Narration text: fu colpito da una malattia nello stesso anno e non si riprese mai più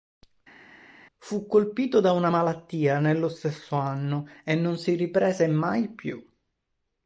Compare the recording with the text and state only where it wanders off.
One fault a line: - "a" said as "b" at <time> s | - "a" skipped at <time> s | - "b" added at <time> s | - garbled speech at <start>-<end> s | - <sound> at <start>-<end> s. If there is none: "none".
none